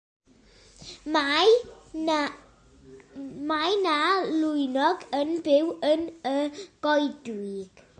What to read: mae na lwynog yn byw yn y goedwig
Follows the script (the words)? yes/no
yes